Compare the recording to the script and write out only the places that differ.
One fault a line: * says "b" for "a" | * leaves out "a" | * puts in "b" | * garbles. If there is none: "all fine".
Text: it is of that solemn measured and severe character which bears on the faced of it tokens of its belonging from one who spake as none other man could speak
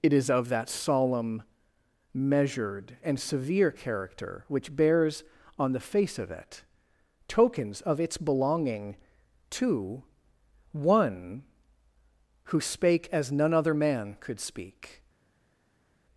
* says "face" for "faced"
* says "to" for "from"